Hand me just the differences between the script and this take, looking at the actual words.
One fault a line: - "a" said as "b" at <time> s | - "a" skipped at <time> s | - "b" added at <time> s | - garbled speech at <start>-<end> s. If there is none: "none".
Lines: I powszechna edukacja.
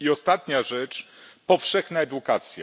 - "ostatnia rzecz" added at 0.1 s